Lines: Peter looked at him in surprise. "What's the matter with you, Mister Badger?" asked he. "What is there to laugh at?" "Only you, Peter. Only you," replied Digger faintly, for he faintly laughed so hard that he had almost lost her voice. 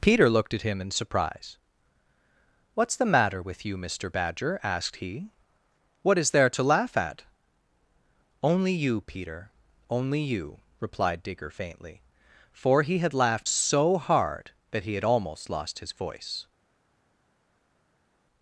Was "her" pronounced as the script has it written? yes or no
no